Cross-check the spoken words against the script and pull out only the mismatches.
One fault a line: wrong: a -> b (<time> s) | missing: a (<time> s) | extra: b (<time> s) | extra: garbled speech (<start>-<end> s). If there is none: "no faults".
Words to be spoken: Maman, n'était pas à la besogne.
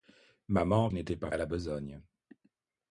no faults